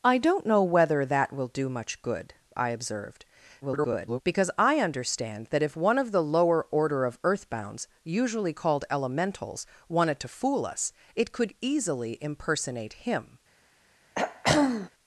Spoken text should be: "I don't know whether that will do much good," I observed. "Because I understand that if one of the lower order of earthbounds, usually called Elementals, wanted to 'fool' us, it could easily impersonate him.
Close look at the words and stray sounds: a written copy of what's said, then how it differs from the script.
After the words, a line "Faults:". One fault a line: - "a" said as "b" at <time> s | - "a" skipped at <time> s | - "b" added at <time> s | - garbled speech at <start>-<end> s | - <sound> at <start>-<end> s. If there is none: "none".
"I don't know whether that will do much good," I observed. [garbled] "Because I understand that if one of the lower order of earthbounds, usually called Elementals, wanted to 'fool' us, it could easily impersonate him.
Faults:
- garbled speech at 3.6-4.2 s
- throat clearing at 14.1-14.9 s